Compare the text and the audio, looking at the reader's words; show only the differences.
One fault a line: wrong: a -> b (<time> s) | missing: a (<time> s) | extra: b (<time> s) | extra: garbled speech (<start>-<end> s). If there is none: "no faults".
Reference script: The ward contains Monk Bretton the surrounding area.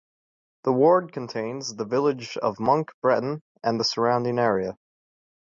extra: the village of (1.8 s)
extra: and (3.6 s)